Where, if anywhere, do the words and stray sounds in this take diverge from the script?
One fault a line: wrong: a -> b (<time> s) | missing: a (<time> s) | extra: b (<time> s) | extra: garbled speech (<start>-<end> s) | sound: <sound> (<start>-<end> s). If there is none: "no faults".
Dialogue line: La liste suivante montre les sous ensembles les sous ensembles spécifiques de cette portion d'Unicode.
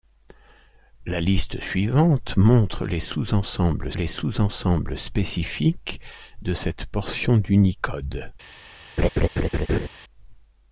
sound: laugh (9.0-9.9 s)